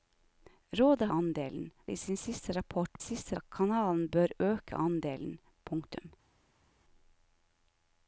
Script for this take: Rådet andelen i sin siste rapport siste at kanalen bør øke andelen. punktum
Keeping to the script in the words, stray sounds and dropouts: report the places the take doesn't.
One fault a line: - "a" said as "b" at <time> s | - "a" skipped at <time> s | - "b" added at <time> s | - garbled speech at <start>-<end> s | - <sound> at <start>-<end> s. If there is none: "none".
none